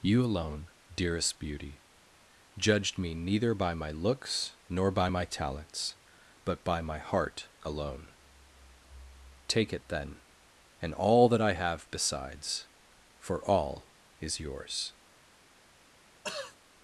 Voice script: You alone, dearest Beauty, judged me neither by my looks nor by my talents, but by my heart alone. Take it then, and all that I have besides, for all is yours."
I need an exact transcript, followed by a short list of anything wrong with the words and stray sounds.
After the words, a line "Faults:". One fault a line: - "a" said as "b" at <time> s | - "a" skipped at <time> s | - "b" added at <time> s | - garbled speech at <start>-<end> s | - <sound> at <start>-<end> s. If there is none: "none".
You alone, dearest Beauty, judged me neither by my looks nor by my talents, but by my heart alone. Take it then, and all that I have besides, for all is yours."
Faults:
- throat clearing at 16.2-16.6 s